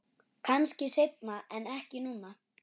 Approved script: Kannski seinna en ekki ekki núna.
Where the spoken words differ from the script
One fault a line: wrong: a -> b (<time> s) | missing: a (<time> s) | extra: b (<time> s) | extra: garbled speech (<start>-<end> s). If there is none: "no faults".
missing: ekki (2.0 s)